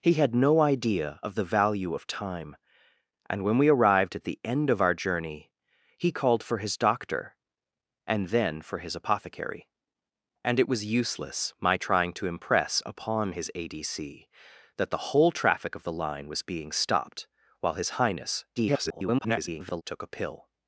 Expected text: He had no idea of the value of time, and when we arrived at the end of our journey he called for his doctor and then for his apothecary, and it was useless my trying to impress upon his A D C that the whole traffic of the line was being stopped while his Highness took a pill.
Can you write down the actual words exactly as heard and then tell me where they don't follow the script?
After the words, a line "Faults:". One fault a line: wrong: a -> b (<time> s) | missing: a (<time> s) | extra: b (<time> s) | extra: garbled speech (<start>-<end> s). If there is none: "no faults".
He had no idea of the value of time, and when we arrived at the end of our journey he called for his doctor and then for his apothecary, and it was useless my trying to impress upon his A D C that the whole traffic of the line was being stopped while his Highness [garbled] took a pill.
Faults:
extra: garbled speech (18.6-19.8 s)